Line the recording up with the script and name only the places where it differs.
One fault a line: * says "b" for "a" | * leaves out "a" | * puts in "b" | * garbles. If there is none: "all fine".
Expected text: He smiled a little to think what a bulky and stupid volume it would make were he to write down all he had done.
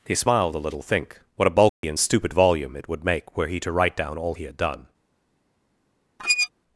* leaves out "to"